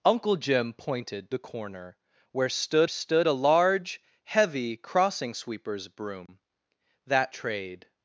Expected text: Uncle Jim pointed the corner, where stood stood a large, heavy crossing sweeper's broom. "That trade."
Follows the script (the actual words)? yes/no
yes